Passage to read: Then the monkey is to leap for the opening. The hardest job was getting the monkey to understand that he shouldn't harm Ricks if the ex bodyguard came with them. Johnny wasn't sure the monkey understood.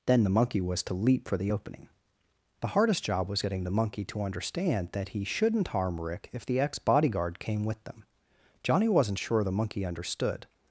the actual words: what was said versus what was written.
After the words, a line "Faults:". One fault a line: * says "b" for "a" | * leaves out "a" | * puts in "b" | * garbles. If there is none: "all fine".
Then the monkey was to leap for the opening. The hardest job was getting the monkey to understand that he shouldn't harm Rick if the ex bodyguard came with them. Johnny wasn't sure the monkey understood.
Faults:
* says "was" for "is"
* says "Rick" for "Ricks"